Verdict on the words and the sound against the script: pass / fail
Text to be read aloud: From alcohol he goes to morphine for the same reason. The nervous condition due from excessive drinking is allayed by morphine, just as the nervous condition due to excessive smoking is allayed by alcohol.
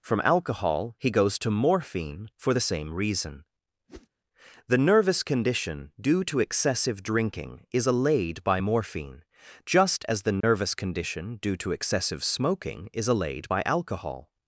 fail